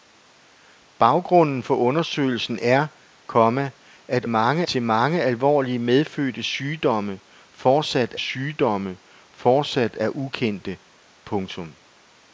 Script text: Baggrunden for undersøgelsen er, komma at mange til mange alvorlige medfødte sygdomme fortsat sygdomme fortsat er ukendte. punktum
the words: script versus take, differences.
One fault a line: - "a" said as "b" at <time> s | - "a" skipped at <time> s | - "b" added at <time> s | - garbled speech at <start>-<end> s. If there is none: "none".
none